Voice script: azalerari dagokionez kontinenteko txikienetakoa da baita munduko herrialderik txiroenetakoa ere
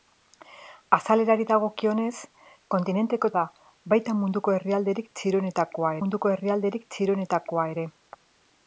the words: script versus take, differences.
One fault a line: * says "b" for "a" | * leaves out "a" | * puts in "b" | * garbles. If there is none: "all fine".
* leaves out "txikienetakoa"
* puts in "munduko herrialderik txiroenetakoa"